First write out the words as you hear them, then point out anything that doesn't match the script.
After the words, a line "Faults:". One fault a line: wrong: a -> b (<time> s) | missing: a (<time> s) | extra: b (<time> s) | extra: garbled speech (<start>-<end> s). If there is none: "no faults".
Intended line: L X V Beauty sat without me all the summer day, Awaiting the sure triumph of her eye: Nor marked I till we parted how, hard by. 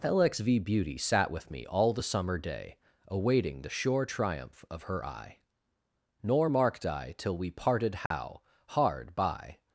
L X V Beauty sat with me all the summer day, Awaiting the sure triumph of her eye: Nor marked I till we parted how, hard by.
Faults:
wrong: without -> with (1.3 s)